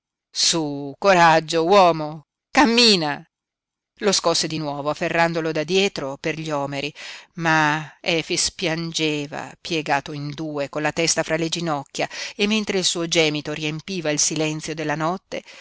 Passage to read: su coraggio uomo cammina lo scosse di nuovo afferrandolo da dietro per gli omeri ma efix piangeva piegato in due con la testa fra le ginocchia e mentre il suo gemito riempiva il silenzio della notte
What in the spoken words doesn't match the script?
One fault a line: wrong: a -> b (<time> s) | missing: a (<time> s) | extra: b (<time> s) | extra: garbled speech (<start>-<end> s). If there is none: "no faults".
no faults